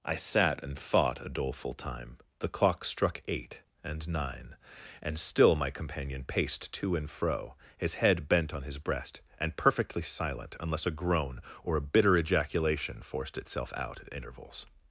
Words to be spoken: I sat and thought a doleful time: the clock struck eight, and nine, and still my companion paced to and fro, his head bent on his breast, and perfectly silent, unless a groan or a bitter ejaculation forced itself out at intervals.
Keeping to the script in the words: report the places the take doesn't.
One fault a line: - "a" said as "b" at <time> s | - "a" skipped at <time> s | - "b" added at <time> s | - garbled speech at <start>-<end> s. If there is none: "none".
none